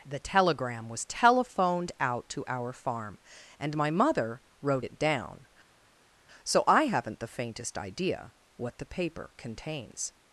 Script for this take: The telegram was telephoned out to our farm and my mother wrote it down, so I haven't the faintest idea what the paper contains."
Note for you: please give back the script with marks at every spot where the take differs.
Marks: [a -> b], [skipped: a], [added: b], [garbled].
The telegram was telephoned out to our farm and my mother wrote it down, so I haven't the faintest idea what the paper contains."